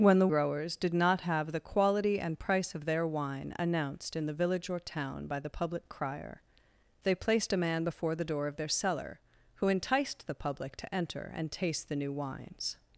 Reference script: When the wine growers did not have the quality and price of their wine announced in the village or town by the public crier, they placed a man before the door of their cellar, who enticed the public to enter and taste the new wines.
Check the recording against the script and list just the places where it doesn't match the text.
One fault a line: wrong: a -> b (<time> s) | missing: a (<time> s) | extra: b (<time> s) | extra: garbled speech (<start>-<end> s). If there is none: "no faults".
missing: wine (0.3 s)